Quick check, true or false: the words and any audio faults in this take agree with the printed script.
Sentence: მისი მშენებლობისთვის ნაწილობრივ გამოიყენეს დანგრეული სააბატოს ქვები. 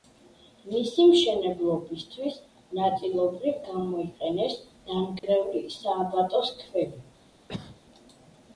false